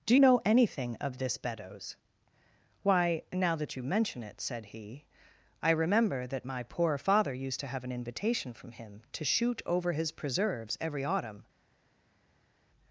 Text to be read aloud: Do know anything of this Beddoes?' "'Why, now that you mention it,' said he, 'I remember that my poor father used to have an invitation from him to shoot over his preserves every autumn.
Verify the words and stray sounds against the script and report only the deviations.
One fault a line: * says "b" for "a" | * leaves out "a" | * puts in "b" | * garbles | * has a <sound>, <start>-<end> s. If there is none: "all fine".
all fine